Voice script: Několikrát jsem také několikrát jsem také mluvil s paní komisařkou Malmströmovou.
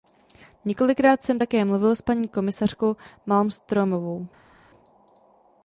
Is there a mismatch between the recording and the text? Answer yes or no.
yes